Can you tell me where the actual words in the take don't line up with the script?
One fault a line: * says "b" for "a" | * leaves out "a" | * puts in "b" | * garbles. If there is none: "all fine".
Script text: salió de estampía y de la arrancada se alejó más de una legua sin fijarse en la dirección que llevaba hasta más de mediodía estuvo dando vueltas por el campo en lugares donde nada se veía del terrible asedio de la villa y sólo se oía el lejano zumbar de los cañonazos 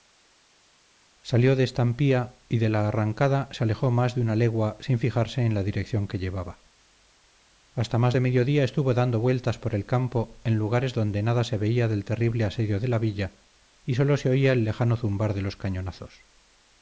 all fine